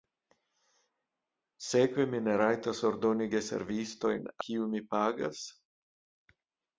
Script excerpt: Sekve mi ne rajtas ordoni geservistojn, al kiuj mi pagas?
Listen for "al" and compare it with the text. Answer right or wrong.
wrong